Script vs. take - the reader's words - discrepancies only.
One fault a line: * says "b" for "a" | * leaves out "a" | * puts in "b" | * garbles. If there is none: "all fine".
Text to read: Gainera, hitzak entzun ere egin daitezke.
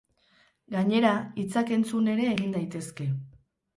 all fine